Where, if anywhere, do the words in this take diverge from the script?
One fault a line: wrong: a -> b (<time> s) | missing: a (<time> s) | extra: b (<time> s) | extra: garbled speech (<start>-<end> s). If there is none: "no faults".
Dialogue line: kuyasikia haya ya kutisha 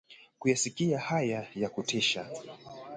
no faults